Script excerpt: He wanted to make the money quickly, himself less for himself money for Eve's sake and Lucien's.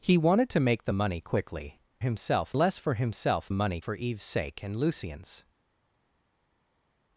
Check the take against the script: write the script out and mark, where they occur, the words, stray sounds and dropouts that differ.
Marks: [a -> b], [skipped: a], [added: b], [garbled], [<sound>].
He wanted to make the money quickly, himself less for himself money for Eve's sake and Lucien's.